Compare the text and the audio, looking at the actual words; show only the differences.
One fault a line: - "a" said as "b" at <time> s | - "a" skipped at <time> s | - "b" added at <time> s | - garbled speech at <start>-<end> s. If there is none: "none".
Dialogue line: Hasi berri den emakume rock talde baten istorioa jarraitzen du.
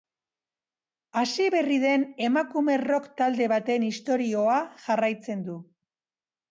none